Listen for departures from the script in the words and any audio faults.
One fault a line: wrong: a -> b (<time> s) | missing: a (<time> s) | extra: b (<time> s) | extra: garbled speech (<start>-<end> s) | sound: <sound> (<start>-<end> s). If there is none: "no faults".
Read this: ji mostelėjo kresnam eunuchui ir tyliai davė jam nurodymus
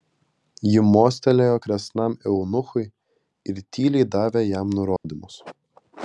sound: dropout (5.0-5.0 s)